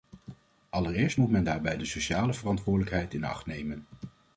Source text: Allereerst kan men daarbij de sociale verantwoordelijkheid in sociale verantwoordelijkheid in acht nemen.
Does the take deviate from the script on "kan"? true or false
true